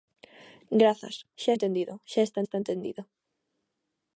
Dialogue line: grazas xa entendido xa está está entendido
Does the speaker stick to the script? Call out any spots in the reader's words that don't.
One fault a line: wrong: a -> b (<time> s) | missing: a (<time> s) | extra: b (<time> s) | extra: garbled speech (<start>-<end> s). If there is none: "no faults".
no faults